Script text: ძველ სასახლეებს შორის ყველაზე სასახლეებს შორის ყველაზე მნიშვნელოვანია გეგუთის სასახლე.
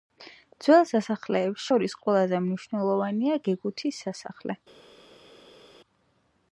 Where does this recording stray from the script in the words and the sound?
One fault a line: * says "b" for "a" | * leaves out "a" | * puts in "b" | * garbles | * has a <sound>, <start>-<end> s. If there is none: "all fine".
* leaves out "სასახლეებს შორის ყველაზე"